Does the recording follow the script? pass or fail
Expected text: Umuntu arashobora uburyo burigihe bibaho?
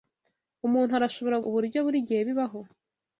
pass